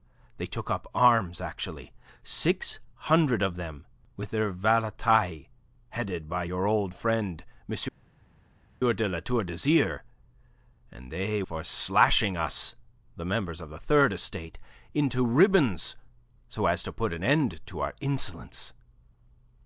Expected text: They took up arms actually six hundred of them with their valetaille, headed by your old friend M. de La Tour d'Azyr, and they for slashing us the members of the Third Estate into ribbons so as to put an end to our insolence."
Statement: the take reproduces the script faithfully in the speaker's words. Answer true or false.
true